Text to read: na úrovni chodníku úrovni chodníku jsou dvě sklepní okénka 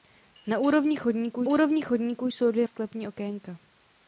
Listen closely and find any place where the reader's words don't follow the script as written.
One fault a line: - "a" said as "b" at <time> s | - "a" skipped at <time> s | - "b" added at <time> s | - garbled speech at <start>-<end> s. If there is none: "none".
none